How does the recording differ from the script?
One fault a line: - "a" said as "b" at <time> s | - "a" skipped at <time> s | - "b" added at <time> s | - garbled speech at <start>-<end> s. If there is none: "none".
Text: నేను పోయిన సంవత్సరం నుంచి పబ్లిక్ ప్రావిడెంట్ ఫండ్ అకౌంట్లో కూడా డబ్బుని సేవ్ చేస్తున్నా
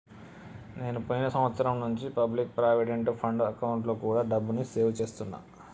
none